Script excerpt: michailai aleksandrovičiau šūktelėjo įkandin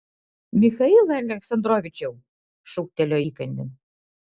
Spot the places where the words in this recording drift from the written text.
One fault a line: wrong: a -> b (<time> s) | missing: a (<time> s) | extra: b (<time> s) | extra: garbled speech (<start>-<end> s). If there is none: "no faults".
no faults